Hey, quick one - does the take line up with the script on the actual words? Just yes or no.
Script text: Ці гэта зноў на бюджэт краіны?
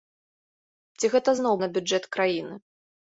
yes